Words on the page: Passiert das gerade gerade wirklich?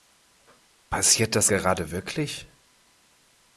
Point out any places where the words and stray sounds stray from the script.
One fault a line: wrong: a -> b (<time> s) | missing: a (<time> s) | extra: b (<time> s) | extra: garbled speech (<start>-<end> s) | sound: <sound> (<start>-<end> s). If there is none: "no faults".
missing: gerade (1.9 s)